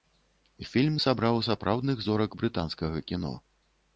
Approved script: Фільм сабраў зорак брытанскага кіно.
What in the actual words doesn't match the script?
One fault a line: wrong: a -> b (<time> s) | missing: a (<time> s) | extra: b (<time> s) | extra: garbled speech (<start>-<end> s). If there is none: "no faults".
extra: сапраўдных (1.5 s)